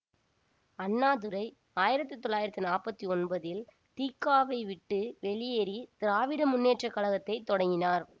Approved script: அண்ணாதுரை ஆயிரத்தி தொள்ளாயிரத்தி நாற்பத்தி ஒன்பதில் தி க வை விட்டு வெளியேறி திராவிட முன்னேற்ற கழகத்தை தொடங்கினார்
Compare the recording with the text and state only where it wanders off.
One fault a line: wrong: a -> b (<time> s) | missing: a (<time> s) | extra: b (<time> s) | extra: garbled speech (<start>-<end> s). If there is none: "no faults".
no faults